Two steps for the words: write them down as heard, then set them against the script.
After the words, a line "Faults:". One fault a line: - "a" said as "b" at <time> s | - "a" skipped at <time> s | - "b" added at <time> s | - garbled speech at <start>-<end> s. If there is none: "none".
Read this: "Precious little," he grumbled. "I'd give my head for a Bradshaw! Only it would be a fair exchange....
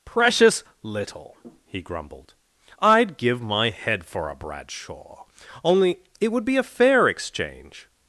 "Precious little," he grumbled. "I'd give my head for a Bradshaw! Only it would be a fair exchange....
Faults:
none